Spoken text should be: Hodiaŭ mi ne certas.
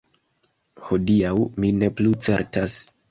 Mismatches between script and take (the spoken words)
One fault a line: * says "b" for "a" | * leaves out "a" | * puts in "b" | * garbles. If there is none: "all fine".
* puts in "plu"